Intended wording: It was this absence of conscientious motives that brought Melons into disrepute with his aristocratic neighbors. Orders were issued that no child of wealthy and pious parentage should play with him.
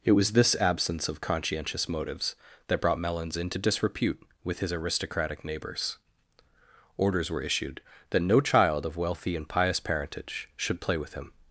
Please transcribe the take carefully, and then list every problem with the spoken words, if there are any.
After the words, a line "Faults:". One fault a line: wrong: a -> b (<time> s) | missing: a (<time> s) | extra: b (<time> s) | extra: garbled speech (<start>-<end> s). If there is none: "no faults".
It was this absence of conscientious motives that brought Melons into disrepute with his aristocratic neighbors. Orders were issued that no child of wealthy and pious parentage should play with him.
Faults:
no faults